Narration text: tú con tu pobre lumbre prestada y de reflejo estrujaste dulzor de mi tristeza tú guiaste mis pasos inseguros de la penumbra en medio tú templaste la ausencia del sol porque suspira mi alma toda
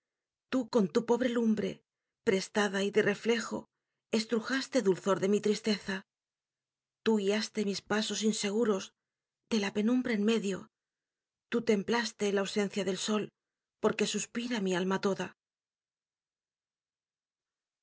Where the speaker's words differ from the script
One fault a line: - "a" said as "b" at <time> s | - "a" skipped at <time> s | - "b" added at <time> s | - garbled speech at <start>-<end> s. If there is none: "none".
none